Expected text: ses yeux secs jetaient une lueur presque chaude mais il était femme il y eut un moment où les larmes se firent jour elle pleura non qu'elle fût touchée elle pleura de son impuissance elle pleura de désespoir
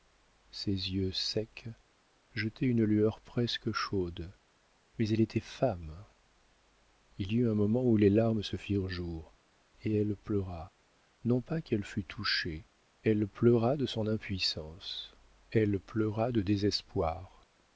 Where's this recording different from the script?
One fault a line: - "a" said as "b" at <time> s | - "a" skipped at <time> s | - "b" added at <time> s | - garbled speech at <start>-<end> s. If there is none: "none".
- "il" said as "elle" at 5.1 s
- "et" added at 9.8 s
- "pas" added at 11.4 s